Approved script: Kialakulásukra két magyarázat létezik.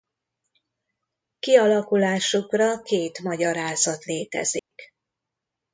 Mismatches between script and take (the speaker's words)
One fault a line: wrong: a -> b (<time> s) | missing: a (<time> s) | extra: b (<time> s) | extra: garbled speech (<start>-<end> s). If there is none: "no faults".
no faults